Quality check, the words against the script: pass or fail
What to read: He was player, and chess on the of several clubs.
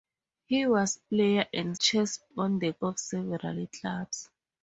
pass